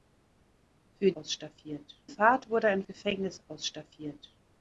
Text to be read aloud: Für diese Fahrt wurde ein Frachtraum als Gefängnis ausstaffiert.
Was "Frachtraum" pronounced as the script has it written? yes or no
no